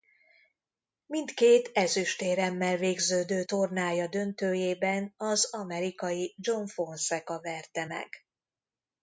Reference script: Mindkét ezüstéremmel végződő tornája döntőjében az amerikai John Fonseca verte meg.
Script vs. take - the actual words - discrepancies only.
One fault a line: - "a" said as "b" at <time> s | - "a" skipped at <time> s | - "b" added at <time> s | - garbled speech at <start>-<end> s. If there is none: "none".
none